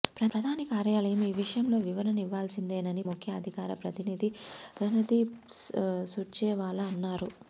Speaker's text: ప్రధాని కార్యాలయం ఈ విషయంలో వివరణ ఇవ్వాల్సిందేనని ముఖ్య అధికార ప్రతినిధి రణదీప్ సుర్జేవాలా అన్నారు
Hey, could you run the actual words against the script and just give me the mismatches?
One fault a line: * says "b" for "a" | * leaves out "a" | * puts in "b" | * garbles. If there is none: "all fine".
all fine